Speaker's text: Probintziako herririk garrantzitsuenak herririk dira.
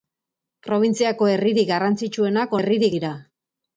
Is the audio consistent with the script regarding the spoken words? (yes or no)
yes